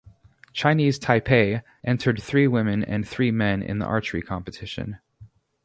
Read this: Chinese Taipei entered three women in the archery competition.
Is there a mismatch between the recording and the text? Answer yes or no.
yes